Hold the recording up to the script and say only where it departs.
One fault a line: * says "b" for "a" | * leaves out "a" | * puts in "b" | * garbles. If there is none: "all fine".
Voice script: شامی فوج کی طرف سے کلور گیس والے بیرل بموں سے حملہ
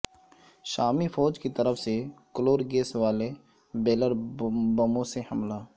all fine